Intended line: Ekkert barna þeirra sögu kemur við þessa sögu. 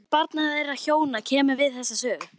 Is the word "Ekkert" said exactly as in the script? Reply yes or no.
yes